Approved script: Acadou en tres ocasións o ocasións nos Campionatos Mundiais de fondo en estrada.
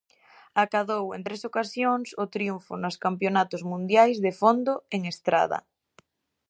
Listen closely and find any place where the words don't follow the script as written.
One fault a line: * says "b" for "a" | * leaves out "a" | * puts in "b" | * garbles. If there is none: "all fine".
* says "triunfo" for "ocasións"